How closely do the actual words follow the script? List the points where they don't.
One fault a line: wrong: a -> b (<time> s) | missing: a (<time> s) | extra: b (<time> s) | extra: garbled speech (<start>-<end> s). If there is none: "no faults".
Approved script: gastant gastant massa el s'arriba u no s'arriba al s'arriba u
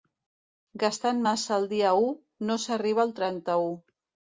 missing: gastant (1.2 s)
wrong: s'arriba -> dia (1.7 s)
wrong: s'arriba -> trenta (3.2 s)